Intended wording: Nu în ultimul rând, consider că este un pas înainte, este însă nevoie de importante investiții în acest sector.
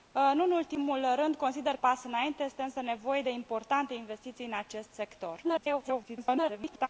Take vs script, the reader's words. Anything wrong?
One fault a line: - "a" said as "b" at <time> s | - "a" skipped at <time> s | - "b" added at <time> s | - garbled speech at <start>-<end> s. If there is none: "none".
- "că este un" skipped at 1.8 s
- garbled speech at 5.4-6.9 s